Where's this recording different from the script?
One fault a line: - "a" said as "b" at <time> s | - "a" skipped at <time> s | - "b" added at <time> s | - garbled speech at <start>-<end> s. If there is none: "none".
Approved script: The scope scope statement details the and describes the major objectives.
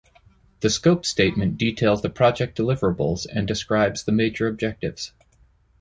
- "scope" skipped at 1.1 s
- "project deliverables" added at 2.1 s